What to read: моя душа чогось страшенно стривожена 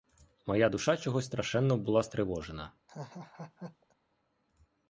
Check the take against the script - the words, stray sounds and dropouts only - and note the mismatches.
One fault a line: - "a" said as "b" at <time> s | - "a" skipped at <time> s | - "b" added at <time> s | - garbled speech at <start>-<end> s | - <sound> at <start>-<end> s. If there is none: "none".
- "була" added at 1.8 s
- laugh at 2.9-4.0 s